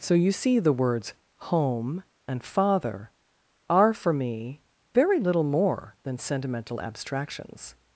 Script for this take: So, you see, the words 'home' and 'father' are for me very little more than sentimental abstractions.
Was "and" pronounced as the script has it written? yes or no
yes